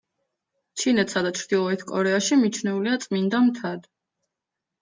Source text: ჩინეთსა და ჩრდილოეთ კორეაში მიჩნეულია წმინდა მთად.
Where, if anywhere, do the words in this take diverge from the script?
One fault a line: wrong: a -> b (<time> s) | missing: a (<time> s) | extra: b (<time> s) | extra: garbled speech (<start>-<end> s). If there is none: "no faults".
no faults